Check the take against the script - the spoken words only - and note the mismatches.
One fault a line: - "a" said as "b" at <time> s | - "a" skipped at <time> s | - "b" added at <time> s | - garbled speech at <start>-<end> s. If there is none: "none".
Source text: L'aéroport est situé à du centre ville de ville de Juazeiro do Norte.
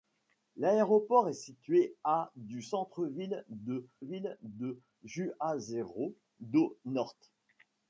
none